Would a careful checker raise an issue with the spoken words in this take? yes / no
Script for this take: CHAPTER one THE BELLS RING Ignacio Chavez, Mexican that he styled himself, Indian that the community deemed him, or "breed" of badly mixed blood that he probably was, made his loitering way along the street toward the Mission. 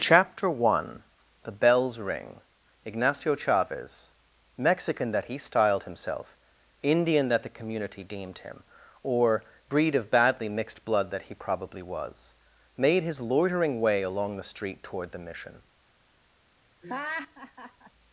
no